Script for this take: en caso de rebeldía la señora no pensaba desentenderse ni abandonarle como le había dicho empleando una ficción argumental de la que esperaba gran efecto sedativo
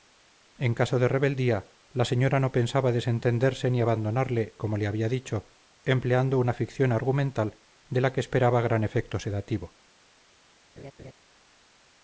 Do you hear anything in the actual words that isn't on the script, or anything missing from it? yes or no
no